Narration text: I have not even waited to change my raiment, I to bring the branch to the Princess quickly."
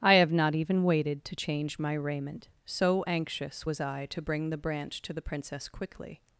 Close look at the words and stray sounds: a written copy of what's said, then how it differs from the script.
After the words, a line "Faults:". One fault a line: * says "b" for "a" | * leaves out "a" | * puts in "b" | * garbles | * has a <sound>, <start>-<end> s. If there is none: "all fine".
I have not even waited to change my raiment, so anxious was I to bring the branch to the Princess quickly."
Faults:
* puts in "so anxious was"